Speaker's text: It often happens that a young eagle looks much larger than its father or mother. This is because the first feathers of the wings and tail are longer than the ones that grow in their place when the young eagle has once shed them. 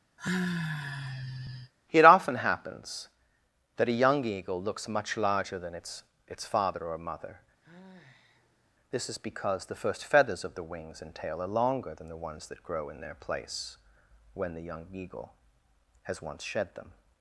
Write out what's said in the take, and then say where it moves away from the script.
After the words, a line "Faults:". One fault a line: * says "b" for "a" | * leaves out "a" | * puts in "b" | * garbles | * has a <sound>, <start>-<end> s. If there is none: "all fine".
It often happens that a young eagle looks much larger than its its father or mother. This is because the first feathers of the wings and tail are longer than the ones that grow in their place when the young eagle has once shed them.
Faults:
* has a sigh, 0.2-1.7 s
* puts in "its"
* has a sigh, 7.6-8.7 s